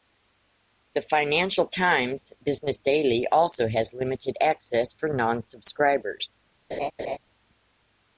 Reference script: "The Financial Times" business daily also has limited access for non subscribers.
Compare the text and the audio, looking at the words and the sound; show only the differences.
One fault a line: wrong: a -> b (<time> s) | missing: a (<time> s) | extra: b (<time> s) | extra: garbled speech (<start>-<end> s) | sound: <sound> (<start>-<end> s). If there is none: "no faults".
sound: laugh (6.7-7.2 s)